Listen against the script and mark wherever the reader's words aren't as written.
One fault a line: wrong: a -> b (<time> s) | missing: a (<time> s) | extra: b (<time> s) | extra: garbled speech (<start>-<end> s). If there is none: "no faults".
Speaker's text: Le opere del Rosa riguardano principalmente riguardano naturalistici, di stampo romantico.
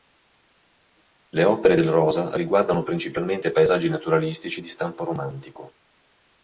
wrong: riguardano -> paesaggi (3.5 s)